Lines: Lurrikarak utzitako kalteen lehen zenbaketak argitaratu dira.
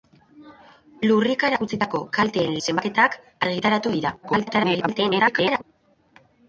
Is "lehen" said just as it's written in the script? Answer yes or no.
no